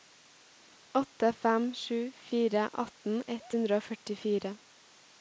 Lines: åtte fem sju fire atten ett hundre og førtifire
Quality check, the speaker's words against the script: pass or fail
pass